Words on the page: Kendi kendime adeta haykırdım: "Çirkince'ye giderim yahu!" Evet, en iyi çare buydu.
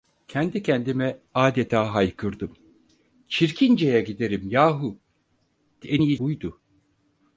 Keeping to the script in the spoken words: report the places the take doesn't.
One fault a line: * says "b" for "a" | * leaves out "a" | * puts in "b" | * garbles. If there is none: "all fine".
* leaves out "Evet"
* leaves out "çare"